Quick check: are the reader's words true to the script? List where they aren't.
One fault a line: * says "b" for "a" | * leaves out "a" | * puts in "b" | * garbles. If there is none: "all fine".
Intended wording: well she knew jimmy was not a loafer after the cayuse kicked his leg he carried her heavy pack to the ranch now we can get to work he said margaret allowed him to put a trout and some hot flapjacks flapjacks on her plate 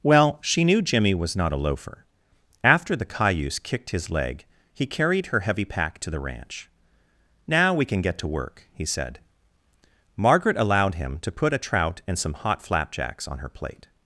* leaves out "flapjacks"